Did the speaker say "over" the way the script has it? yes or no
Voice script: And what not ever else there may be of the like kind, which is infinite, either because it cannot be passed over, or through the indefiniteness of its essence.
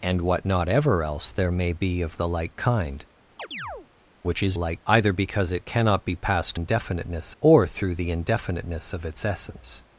no